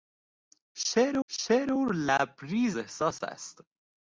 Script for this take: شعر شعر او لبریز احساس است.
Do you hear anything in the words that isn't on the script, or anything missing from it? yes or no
no